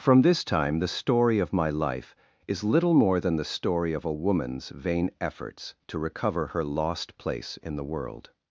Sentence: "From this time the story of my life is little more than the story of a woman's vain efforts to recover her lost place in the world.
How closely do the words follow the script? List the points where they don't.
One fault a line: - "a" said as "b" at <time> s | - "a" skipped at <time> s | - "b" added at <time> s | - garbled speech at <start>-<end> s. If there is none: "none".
none